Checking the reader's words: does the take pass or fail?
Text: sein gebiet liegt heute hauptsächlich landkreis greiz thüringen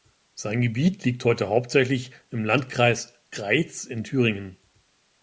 fail